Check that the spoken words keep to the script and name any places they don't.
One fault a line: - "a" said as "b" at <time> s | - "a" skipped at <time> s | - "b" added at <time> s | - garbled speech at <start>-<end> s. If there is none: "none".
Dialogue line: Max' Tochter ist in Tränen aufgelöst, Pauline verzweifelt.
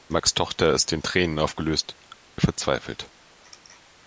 - "Pauline" skipped at 2.0 s